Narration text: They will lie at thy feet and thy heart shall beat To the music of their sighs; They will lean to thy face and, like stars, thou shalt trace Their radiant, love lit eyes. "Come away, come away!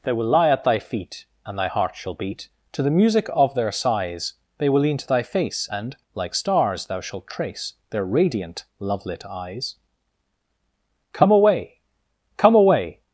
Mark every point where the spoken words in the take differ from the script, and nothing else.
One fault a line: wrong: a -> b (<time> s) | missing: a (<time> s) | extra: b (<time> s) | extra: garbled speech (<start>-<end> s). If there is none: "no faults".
no faults